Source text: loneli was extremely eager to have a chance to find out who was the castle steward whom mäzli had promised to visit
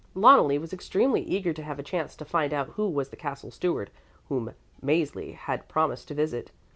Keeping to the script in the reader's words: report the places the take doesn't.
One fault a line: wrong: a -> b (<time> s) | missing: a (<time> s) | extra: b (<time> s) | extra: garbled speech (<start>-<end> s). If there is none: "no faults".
no faults